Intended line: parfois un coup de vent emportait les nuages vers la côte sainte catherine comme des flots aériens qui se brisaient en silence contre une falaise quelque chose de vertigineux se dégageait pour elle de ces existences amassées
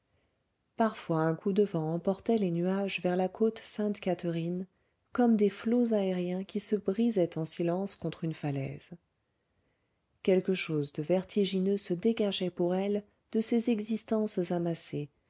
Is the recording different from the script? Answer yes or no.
no